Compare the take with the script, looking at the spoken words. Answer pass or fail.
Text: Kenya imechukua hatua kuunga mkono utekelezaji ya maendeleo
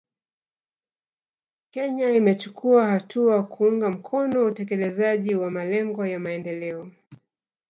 fail